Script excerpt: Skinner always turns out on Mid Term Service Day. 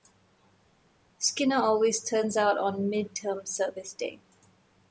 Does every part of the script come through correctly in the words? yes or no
yes